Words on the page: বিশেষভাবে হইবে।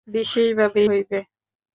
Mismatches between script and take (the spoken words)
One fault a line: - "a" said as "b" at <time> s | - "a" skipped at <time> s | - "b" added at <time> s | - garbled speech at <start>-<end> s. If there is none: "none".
none